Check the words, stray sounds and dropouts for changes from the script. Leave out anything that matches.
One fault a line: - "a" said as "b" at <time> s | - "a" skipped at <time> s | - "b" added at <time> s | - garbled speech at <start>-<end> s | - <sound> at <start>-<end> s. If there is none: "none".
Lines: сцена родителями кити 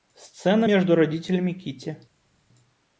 - "между" added at 0.6 s